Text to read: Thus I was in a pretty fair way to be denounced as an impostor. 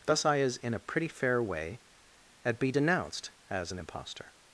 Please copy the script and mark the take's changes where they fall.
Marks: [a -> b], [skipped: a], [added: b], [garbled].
Thus I [was -> is] in a pretty fair way [to -> at] be denounced as an impostor.